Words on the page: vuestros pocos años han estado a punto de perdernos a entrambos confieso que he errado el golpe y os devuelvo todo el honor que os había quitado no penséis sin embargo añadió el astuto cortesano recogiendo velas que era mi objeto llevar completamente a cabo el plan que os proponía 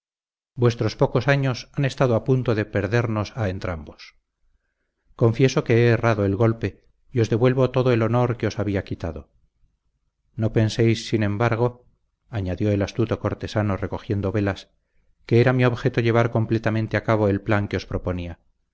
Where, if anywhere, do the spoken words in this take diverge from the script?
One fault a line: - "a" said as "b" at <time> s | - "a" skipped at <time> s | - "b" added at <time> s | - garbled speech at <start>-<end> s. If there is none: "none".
none